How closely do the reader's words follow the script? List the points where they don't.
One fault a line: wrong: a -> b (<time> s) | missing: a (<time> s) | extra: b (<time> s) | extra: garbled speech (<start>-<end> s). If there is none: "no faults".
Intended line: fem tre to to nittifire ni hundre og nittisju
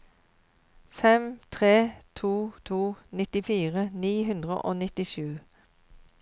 no faults